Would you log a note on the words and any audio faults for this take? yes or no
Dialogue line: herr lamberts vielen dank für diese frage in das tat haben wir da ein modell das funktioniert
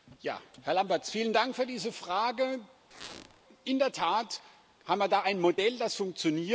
yes